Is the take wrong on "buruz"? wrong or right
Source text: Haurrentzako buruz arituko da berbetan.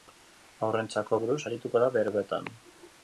right